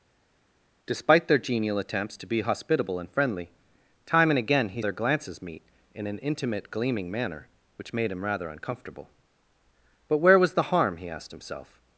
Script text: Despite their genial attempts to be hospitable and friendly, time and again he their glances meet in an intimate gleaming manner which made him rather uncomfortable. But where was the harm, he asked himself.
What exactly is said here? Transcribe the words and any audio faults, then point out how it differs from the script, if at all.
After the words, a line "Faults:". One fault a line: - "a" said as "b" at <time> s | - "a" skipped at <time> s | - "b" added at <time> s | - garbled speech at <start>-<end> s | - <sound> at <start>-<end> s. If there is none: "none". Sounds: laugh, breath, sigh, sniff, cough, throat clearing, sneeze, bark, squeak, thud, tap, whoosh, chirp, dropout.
Despite their genial attempts to be hospitable and friendly, time and again he their glances meet in an intimate gleaming manner which made him rather uncomfortable. But where was the harm, he asked himself.
Faults:
none